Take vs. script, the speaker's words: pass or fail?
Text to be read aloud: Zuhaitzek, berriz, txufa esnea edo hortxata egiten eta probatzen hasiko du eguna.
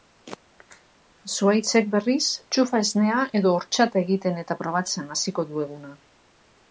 pass